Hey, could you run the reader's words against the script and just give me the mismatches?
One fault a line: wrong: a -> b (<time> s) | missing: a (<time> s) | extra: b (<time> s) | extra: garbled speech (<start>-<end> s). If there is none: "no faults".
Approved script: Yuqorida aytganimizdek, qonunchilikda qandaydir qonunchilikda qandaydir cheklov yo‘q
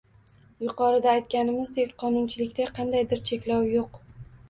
missing: qonunchilikda qandaydir (3.2 s)